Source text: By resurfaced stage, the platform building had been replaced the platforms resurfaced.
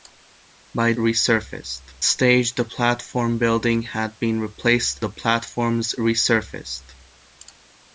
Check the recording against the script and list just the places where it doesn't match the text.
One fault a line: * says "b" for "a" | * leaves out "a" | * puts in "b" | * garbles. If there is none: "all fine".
all fine